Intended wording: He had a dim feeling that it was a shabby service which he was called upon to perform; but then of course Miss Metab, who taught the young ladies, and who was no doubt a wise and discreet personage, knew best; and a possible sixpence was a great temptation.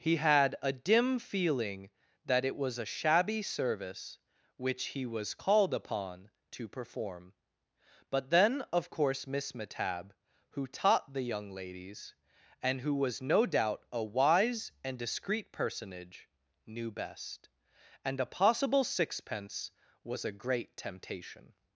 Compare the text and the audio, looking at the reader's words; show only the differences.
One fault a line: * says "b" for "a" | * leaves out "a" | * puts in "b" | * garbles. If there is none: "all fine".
all fine